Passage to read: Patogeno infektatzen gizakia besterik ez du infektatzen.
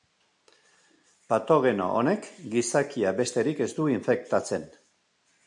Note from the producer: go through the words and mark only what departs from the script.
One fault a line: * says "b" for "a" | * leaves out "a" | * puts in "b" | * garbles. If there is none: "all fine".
* says "honek" for "infektatzen"